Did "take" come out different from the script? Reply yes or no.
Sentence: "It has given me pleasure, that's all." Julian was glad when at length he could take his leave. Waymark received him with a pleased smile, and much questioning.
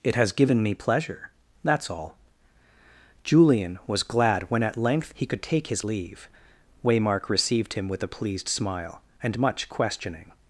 no